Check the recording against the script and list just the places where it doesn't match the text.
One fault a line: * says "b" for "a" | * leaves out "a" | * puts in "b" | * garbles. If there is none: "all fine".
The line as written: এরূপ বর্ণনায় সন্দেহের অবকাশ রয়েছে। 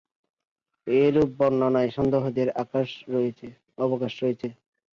all fine